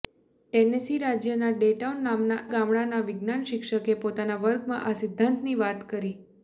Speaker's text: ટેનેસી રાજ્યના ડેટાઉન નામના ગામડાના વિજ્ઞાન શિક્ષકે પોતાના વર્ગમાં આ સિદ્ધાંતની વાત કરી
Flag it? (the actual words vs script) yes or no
no